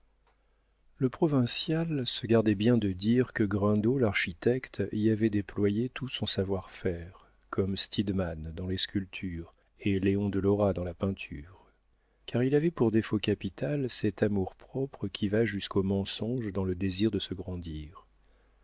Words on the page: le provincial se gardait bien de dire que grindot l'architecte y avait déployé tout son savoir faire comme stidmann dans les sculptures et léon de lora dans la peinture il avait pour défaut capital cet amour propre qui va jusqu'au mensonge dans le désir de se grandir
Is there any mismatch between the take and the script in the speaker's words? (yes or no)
yes